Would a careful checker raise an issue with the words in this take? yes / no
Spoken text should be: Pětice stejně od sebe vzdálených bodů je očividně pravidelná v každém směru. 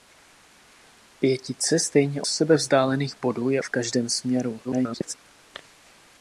yes